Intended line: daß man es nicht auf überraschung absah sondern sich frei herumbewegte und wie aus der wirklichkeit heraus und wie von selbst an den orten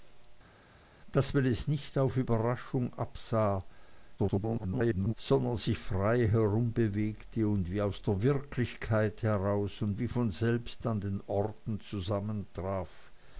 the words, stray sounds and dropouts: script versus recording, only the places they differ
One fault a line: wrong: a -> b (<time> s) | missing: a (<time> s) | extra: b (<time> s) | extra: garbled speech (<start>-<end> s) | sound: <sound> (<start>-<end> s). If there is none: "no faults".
extra: garbled speech (4.2-5.1 s)